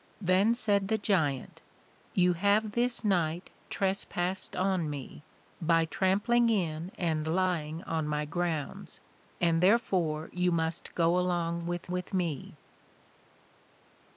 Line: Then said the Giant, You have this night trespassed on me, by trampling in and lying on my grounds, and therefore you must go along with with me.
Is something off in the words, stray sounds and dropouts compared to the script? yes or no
no